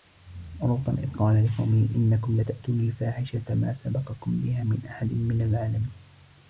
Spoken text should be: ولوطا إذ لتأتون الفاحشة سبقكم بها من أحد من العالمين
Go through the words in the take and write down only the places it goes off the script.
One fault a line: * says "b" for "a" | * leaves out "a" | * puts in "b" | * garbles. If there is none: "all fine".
* puts in "قال لقومه إنكم"
* puts in "ما"